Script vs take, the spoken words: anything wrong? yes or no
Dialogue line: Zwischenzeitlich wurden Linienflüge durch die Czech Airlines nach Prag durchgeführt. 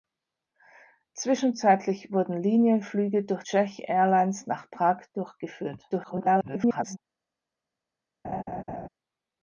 yes